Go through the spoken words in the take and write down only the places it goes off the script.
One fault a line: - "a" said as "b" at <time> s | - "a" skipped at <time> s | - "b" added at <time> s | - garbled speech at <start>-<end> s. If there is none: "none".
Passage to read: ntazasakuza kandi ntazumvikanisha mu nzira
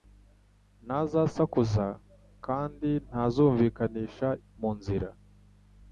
none